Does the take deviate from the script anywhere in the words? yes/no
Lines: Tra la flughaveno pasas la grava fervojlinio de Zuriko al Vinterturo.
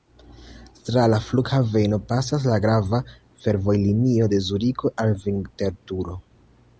no